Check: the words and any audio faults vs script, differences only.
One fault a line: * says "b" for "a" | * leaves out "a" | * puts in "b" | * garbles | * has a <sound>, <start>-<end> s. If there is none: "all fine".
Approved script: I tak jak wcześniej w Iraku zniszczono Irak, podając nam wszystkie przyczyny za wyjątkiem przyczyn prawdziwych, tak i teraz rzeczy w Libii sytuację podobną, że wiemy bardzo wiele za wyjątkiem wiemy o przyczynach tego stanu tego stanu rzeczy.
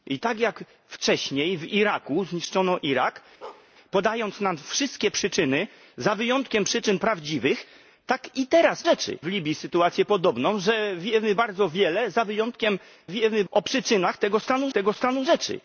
* has a bark, 3.4-3.7 s